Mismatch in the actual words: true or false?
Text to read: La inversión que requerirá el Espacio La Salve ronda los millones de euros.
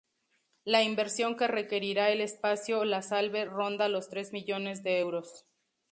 true